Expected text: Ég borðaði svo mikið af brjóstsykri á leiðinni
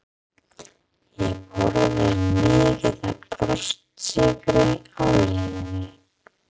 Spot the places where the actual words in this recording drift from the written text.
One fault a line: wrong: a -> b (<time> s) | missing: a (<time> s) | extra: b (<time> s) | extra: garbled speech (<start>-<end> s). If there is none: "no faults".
missing: svo (2.1 s)